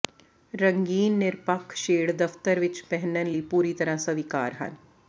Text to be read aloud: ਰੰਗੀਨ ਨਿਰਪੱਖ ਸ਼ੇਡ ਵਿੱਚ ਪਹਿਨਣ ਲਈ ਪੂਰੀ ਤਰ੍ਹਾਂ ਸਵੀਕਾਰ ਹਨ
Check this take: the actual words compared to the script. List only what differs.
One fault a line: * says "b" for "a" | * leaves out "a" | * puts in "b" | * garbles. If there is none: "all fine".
* puts in "ਦਫਤਰ"